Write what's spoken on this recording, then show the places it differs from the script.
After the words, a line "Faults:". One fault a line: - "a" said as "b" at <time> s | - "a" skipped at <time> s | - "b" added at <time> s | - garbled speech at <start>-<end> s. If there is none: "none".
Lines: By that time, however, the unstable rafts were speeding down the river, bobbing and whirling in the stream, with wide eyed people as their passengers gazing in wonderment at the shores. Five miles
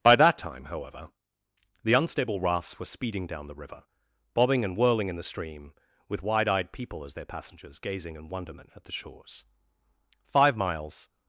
By that time, however, the unstable rafts were speeding down the river, bobbing and whirling in the stream, with wide eyed people as their passengers gazing in wonderment at the shores. Five miles
Faults:
none